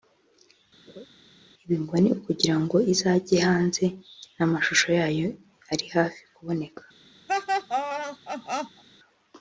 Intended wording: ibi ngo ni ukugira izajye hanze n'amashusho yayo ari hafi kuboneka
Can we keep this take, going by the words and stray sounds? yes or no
no